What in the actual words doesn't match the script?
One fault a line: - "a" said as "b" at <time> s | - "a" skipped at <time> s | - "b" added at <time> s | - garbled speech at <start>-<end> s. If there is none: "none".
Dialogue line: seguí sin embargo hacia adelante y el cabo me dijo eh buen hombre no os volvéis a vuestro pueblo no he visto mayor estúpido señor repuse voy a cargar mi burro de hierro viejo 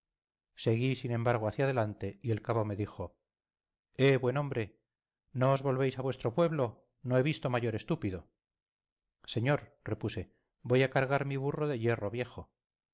none